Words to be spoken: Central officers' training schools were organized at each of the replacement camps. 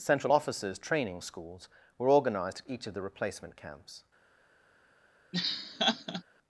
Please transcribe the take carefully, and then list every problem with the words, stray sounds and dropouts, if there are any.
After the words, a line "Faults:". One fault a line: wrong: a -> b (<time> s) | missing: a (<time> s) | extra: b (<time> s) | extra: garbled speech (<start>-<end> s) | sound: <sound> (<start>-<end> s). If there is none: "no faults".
Central officers' training schools were organized at each of the replacement camps.
Faults:
sound: laugh (5.3-6.2 s)